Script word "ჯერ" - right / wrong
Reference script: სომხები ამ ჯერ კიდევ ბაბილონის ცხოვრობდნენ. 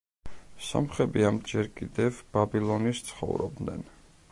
right